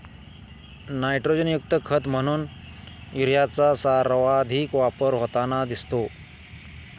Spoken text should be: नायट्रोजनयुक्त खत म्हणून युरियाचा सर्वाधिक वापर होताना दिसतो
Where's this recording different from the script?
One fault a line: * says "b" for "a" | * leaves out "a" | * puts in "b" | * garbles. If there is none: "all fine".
all fine